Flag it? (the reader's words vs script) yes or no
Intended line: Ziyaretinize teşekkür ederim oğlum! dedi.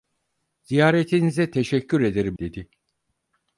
yes